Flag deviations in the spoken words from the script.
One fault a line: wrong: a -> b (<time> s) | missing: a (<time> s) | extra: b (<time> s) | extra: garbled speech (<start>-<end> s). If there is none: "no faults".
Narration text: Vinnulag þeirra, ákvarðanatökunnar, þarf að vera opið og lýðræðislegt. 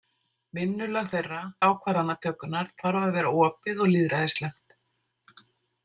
no faults